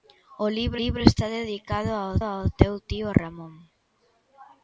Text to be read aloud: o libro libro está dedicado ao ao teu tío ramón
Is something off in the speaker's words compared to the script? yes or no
no